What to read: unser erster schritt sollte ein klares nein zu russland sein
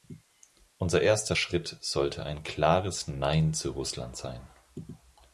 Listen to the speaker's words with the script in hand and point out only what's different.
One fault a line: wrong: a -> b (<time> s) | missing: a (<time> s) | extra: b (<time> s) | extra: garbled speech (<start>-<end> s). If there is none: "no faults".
no faults